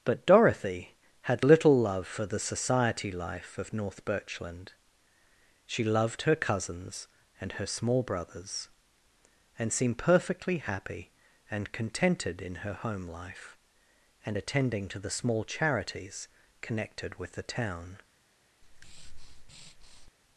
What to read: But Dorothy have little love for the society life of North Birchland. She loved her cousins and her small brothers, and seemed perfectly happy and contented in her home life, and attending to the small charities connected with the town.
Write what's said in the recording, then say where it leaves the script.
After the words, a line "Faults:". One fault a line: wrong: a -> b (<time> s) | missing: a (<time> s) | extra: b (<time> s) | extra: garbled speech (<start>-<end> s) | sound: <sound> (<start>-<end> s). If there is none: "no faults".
But Dorothy had little love for the society life of North Birchland. She loved her cousins and her small brothers, and seemed perfectly happy and contented in her home life, and attending to the small charities connected with the town.
Faults:
wrong: have -> had (1.2 s)
sound: breath (18.6-20.1 s)